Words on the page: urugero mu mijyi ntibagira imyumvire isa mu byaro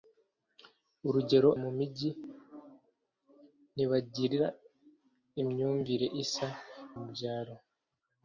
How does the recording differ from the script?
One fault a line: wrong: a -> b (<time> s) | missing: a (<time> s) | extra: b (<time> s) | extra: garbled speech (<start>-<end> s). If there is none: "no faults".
no faults